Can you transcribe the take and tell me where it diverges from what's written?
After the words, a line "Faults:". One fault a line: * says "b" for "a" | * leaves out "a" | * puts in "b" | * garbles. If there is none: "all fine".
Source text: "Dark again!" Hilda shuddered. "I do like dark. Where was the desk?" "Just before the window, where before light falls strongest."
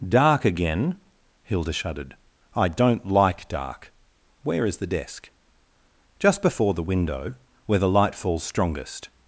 "Dark again!" Hilda shuddered. "I don't like dark. Where is the desk?" "Just before the window, where the light falls strongest."
Faults:
* says "don't" for "do"
* says "is" for "was"
* says "the" for "before"